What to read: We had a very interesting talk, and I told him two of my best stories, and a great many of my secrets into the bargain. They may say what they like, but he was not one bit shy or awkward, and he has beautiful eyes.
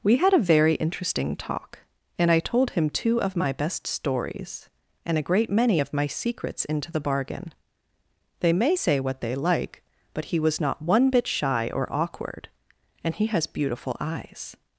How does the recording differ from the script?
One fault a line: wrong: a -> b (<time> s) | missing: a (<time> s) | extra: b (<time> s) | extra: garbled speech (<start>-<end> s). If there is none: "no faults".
no faults